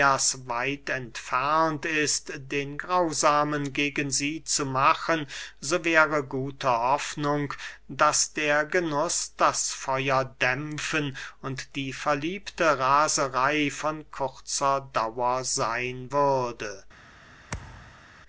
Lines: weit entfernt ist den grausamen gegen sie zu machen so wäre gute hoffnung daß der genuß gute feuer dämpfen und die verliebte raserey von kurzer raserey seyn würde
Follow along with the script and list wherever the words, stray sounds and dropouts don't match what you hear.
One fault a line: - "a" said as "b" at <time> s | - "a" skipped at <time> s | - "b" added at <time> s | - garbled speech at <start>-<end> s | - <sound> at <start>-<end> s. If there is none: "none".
- "gute" said as "das" at 9.4 s
- "raserey" said as "dauer" at 14.9 s
- thud at 17.5-18.1 s